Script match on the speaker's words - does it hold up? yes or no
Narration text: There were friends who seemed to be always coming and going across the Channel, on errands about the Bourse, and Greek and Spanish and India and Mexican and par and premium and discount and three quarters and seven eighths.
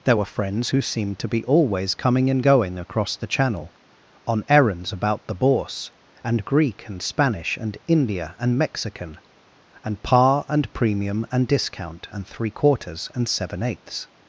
yes